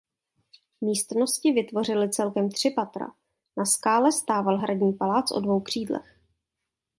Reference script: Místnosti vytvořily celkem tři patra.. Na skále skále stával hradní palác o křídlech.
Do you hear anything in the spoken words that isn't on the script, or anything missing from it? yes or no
yes